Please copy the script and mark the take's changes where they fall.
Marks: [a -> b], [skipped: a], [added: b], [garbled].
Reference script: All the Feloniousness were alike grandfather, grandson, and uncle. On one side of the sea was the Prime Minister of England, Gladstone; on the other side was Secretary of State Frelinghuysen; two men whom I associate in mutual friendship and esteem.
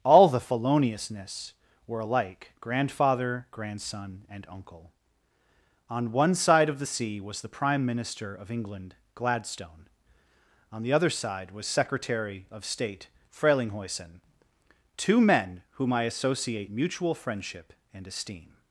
All the Feloniousness were alike grandfather, grandson, and uncle. On one side of the sea was the Prime Minister of England, Gladstone; on the other side was Secretary of State Frelinghuysen; two men whom I associate [skipped: in] mutual friendship and esteem.